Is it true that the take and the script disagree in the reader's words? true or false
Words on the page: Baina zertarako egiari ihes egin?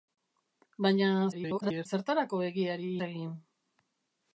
true